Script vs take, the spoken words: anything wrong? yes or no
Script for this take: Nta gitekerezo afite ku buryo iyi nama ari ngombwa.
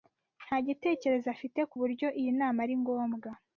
no